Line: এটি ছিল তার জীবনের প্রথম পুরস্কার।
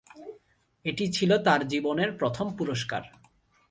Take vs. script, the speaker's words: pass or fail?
pass